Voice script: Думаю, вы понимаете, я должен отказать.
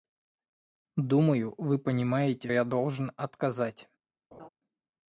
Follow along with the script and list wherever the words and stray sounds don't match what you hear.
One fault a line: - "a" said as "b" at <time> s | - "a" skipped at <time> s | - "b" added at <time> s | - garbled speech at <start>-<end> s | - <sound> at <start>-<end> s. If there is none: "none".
- laugh at 4.3-4.5 s